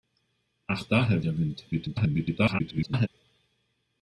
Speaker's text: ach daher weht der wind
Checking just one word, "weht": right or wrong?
wrong